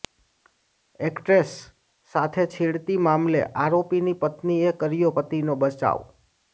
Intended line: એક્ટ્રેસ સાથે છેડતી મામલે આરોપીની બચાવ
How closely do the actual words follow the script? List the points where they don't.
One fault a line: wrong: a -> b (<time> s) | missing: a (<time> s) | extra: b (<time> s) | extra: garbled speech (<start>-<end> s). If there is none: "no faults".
extra: પત્નીએ કર્યો પતિનો (4.2 s)